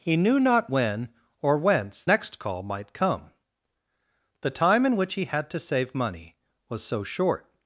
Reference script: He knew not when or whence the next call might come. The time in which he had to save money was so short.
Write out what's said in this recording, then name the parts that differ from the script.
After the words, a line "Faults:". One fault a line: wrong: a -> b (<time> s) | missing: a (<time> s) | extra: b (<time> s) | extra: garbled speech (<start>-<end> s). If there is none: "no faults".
He knew not when or whence next call might come. The time in which he had to save money was so short.
Faults:
missing: the (2.0 s)